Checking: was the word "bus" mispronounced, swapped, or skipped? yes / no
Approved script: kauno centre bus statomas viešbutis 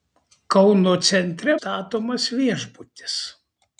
yes